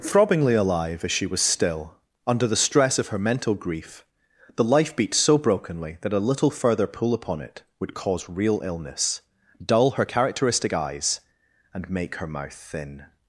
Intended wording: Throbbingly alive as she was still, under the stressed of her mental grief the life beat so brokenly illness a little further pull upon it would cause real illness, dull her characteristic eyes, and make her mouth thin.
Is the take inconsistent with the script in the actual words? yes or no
yes